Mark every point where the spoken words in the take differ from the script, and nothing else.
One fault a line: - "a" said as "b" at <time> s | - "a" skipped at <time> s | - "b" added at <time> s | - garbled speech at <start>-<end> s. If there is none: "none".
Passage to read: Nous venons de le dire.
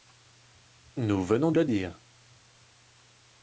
none